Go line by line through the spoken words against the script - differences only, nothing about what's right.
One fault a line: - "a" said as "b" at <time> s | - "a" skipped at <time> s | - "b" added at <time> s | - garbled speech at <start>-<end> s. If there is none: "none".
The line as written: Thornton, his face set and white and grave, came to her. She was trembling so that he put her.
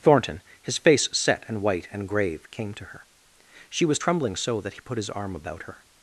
- "his arm about" added at 5.0 s